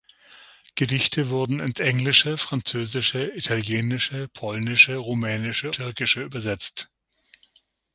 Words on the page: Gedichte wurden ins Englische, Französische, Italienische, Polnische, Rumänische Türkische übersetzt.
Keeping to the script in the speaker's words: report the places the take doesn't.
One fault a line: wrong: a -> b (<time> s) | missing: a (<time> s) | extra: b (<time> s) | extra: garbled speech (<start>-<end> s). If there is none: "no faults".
no faults